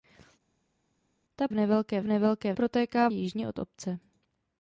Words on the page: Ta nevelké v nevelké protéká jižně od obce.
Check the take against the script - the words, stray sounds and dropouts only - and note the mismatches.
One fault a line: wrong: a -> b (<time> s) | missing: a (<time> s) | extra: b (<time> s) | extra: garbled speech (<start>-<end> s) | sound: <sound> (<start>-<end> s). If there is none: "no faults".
no faults